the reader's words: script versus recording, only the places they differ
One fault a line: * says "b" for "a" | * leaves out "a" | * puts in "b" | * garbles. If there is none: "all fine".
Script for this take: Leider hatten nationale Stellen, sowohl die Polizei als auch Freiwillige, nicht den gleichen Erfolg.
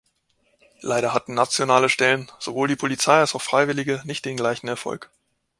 all fine